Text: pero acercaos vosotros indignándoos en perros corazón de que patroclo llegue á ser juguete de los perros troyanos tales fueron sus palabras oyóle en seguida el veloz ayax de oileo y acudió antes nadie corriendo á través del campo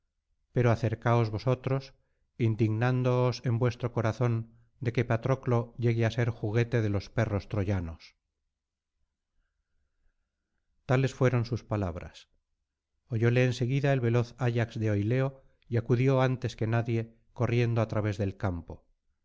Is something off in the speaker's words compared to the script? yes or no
yes